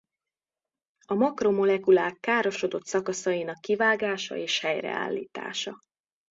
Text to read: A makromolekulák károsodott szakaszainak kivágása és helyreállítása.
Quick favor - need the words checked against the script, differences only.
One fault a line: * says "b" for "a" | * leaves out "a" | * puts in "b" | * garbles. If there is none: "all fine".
all fine